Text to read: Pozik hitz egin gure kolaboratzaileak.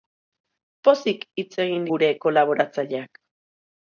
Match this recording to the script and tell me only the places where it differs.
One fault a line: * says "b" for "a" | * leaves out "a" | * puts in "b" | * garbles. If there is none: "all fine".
all fine